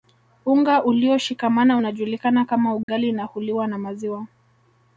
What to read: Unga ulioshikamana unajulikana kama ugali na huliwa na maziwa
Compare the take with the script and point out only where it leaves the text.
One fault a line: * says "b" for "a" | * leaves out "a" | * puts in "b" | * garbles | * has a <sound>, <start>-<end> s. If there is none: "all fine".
* has a dropout, 2.8-2.9 s